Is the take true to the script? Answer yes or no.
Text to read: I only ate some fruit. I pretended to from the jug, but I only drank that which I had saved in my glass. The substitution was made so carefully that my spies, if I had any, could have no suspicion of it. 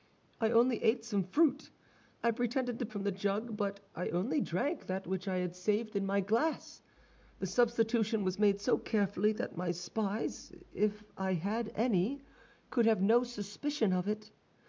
yes